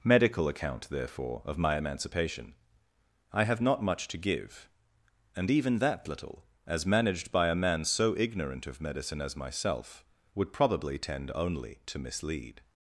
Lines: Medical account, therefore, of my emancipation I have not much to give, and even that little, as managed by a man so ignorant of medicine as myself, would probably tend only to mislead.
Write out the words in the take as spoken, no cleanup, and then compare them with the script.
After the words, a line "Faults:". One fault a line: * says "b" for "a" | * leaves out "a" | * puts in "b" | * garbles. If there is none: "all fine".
Medical account, therefore, of my emancipation I have not much to give, and even that little, as managed by a man so ignorant of medicine as myself, would probably tend only to mislead.
Faults:
all fine